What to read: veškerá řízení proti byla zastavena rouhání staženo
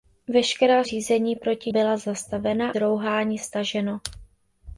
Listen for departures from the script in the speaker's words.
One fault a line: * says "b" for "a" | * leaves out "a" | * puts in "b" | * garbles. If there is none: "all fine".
all fine